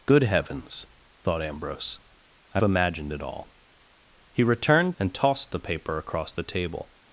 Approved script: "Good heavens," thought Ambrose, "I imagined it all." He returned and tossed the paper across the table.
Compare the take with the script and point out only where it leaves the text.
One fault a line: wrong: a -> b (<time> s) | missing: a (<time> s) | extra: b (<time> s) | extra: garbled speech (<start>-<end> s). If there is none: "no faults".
no faults